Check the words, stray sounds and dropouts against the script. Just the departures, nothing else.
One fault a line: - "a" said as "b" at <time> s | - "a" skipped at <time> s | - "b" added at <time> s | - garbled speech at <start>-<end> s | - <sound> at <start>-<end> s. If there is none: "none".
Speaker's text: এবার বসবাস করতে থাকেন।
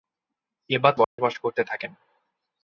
- dropout at 1.0-1.2 s